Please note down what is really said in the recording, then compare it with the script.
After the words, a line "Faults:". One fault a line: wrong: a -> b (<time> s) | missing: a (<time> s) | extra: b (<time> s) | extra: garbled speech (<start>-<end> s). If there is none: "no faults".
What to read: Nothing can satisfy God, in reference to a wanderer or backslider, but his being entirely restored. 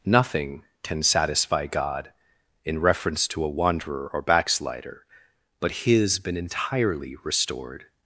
Nothing can satisfy God, in reference to a wanderer or backslider, but his been entirely restored.
Faults:
wrong: being -> been (6.2 s)